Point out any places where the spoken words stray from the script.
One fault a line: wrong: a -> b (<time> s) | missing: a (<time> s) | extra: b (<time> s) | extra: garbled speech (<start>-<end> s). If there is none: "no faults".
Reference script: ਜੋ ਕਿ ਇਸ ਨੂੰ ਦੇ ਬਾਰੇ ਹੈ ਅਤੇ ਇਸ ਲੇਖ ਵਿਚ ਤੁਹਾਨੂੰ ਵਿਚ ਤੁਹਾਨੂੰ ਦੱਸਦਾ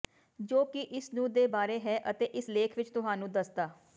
missing: ਵਿਚ ਤੁਹਾਨੂੰ (3.3 s)